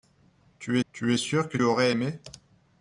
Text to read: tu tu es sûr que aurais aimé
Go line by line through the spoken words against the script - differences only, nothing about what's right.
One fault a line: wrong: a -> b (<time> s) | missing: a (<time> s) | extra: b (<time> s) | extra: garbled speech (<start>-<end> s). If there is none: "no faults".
no faults